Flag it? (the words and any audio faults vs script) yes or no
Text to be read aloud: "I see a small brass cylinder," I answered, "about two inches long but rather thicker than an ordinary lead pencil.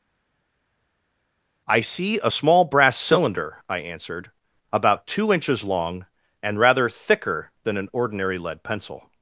yes